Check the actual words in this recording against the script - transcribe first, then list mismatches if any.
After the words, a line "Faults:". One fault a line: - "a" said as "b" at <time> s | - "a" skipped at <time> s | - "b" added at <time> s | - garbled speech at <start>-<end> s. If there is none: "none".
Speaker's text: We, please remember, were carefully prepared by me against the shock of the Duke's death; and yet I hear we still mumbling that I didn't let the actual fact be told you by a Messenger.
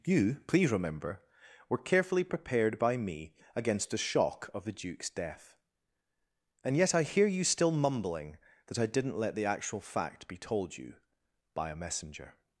You, please remember, were carefully prepared by me against the shock of the Duke's death; and yet I hear you still mumbling that I didn't let the actual fact be told you by a Messenger.
Faults:
- "We" said as "You" at 0.1 s
- "we" said as "you" at 7.3 s